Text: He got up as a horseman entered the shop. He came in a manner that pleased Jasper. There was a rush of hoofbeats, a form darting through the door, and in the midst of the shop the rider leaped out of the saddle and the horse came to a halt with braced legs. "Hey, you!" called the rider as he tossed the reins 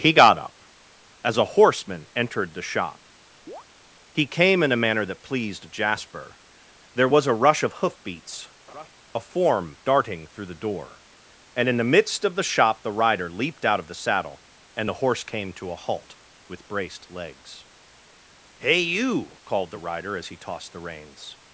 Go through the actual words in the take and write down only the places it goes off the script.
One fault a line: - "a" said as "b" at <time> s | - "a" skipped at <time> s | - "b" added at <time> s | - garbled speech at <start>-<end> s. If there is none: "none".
none